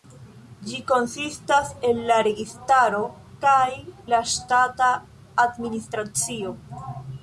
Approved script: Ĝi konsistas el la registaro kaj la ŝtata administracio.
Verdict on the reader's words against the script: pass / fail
pass